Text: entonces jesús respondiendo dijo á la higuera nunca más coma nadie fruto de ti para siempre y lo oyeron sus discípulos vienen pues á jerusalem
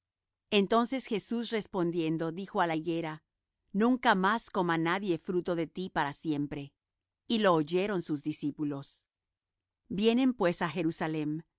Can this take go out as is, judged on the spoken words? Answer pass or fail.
pass